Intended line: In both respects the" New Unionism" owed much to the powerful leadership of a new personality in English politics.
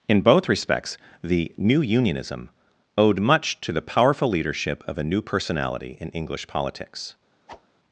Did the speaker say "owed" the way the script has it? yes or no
yes